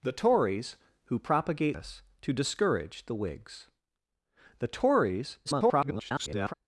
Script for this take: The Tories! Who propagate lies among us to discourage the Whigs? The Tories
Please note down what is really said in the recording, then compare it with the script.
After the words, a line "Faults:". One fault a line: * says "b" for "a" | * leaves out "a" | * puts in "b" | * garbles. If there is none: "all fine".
The Tories! Who propagate us to discourage the Whigs? The Tories [garbled]
Faults:
* leaves out "lies among"
* garbles